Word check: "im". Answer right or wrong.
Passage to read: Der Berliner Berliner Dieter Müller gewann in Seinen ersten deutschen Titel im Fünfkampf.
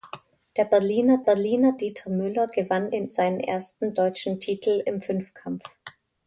right